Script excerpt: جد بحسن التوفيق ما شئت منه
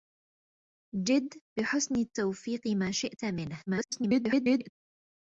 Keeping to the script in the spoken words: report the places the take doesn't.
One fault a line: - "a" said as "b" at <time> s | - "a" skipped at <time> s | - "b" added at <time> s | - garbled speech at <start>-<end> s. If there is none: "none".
- garbled speech at 3.7-4.7 s